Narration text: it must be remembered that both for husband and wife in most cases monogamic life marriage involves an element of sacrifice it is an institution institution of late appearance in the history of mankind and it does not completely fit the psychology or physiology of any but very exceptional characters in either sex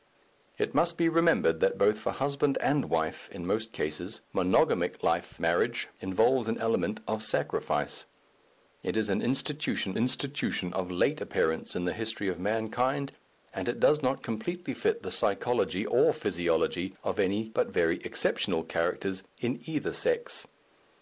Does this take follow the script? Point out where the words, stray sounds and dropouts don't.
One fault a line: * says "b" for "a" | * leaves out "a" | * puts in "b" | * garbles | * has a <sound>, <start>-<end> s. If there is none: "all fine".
all fine